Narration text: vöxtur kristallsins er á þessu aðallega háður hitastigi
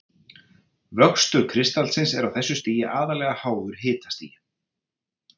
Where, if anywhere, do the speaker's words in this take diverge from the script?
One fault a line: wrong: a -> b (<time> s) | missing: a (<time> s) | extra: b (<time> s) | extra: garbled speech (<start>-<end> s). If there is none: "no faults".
extra: stigi (2.6 s)